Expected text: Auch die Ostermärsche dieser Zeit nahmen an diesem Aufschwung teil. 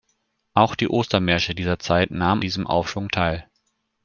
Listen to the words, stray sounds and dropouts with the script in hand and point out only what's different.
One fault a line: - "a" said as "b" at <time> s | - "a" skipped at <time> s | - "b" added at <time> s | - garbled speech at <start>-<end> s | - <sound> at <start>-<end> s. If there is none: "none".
- "an" skipped at 2.4 s